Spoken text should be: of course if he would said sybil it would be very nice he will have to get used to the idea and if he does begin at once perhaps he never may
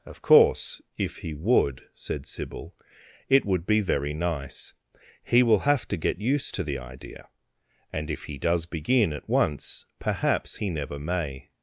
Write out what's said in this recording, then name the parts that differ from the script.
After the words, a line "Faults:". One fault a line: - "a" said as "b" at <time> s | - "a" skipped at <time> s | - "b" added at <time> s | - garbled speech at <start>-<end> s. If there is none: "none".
of course if he would said sybil it would be very nice he will have to get used to the idea and if he does begin at once perhaps he never may
Faults:
none